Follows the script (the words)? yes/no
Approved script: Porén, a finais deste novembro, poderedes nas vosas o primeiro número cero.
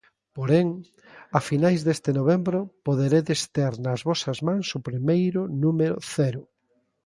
no